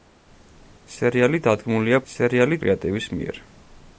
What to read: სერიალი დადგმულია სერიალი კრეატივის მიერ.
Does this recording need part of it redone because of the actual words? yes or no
no